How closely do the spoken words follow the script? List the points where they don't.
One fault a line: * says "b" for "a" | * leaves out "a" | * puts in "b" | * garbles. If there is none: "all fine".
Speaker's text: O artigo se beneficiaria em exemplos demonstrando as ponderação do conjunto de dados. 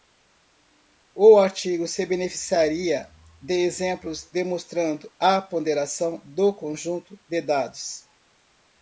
* says "de" for "em"
* says "a" for "as"